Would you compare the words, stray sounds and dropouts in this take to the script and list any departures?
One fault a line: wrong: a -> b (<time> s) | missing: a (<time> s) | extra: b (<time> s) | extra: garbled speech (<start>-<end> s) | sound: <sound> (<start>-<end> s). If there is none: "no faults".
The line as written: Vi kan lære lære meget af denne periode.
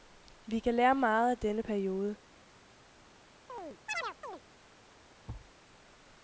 missing: lære (0.9 s)
sound: chirp (3.5-4.4 s)
sound: thud (5.3-5.5 s)